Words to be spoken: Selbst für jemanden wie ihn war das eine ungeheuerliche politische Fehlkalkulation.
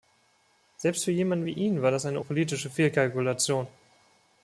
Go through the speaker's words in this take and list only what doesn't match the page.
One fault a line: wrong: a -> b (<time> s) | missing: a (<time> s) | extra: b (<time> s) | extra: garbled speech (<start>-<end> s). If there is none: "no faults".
missing: ungeheuerliche (2.2 s)